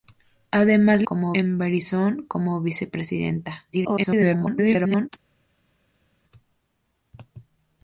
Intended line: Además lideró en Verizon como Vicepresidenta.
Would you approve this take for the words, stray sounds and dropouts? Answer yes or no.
no